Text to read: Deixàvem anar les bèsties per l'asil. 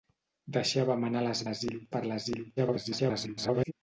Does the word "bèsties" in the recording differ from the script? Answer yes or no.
yes